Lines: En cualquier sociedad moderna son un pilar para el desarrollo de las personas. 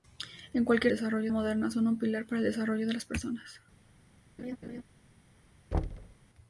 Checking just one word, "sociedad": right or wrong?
wrong